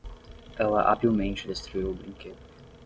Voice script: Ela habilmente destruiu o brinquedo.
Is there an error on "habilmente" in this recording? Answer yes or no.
no